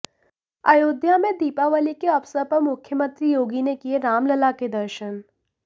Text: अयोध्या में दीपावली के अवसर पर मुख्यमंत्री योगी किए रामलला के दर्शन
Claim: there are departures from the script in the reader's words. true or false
true